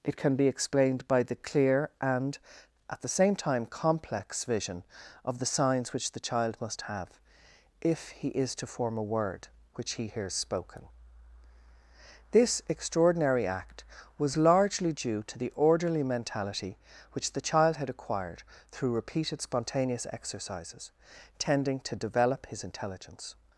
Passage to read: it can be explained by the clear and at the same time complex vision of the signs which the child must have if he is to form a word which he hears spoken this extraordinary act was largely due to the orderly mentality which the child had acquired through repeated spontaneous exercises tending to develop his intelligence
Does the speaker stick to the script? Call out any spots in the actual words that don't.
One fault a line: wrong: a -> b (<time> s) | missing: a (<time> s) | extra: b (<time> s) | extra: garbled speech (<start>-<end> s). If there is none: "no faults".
no faults